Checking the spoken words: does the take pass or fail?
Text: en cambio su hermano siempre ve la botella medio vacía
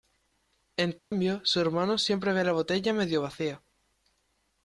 pass